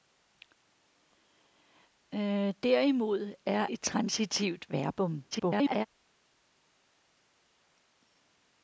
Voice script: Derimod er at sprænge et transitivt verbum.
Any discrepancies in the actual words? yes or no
yes